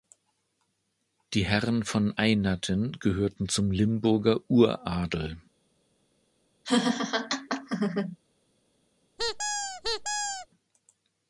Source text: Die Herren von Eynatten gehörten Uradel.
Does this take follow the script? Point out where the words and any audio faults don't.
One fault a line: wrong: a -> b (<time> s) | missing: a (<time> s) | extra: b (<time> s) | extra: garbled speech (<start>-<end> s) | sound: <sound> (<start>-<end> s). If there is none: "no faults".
extra: zum Limburger (3.5 s)
sound: laugh (6.6-8.2 s)
sound: squeak (9.2-10.5 s)